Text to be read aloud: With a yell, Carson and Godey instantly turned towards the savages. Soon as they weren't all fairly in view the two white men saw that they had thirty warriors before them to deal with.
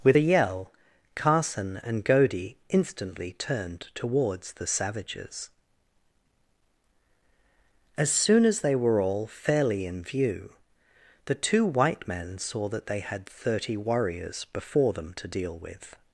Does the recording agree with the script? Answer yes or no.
no